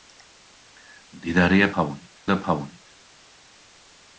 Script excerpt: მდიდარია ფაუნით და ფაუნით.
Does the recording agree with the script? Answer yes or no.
yes